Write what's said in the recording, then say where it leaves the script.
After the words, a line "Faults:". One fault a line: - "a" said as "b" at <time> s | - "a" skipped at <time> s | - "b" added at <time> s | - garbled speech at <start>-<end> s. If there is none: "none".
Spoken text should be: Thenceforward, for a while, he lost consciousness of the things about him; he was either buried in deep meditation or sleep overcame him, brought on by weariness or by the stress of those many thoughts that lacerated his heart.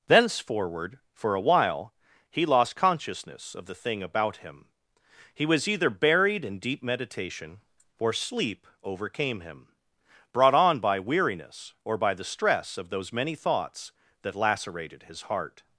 Thenceforward, for a while, he lost consciousness of the thing about him; he was either buried in deep meditation or sleep overcame him, brought on by weariness or by the stress of those many thoughts that lacerated his heart.
Faults:
- "things" said as "thing" at 3.7 s